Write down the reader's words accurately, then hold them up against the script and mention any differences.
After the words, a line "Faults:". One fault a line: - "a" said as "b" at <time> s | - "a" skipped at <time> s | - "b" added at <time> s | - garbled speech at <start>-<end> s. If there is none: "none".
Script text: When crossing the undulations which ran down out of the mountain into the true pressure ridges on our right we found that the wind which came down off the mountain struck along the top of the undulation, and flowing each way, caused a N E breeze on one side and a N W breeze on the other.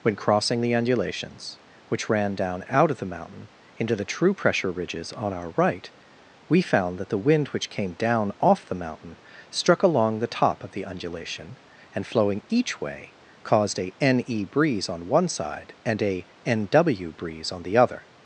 When crossing the undulations which ran down out of the mountain into the true pressure ridges on our right we found that the wind which came down off the mountain struck along the top of the undulation, and flowing each way, caused a N E breeze on one side and a N W breeze on the other.
Faults:
none